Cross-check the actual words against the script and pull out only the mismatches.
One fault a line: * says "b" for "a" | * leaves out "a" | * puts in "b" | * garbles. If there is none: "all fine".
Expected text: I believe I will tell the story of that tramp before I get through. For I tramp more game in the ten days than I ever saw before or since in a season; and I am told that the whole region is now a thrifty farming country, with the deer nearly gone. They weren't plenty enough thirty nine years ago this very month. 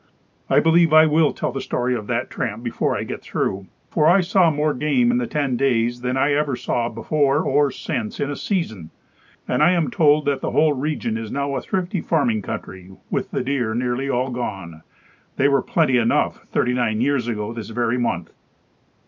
* says "saw" for "tramp"
* puts in "all"
* says "were" for "weren't"